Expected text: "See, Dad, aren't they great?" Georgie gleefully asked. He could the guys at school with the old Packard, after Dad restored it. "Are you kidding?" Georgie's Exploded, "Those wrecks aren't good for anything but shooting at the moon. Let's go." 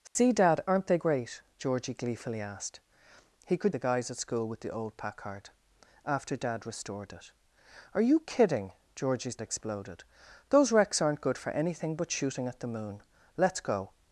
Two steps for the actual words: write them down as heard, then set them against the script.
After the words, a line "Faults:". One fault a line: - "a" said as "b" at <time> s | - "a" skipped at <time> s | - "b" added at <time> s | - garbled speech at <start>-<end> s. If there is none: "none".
"See, Dad, aren't they great?" Georgie gleefully asked. He could the guys at school with the old Packard, after Dad restored it. "Are you kidding?" Georgie's Exploded, "Those wrecks aren't good for anything but shooting at the moon. Let's go."
Faults:
none